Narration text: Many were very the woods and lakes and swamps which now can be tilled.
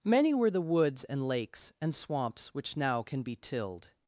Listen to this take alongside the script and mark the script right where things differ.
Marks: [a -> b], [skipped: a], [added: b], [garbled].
Many were [skipped: very] the woods and lakes and swamps which now can be tilled.